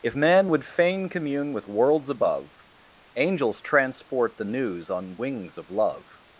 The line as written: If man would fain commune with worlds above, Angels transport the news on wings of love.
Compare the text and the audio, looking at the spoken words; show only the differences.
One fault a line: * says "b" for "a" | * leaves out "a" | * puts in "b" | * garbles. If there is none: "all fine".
all fine